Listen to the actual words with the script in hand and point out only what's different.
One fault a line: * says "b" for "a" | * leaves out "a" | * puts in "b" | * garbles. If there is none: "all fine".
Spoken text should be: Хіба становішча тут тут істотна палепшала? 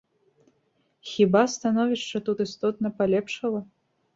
* leaves out "тут"